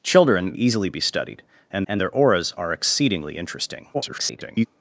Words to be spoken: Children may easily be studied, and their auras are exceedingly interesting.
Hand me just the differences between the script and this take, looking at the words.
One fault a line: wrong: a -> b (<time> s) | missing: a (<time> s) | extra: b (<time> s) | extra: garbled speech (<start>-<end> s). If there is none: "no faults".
missing: may (0.6 s)
extra: and (1.9 s)
extra: garbled speech (3.9-4.7 s)